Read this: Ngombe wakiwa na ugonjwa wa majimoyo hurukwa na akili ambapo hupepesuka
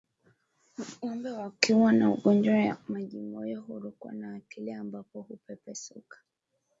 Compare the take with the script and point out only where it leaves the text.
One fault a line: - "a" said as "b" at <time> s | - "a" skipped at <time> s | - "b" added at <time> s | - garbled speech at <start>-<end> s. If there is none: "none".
none